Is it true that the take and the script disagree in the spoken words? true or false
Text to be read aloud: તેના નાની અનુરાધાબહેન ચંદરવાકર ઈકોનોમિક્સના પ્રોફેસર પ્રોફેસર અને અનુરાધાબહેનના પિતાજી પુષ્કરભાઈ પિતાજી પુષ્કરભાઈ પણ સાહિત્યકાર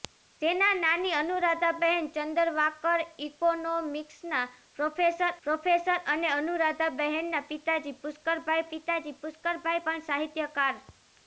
false